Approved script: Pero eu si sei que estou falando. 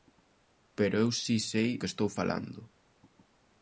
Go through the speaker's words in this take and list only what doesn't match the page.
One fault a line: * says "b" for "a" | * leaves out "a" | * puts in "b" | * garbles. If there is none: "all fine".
all fine